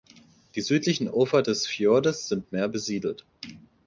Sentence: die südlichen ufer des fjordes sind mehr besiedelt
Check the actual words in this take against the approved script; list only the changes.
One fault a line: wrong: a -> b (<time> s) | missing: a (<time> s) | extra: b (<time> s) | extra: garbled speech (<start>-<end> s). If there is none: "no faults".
no faults